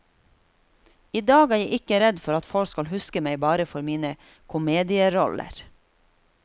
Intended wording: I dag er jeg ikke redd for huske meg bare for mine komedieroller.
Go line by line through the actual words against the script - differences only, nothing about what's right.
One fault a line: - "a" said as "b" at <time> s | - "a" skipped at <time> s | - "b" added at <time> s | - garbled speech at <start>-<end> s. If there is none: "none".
- "at folk skal" added at 2.4 s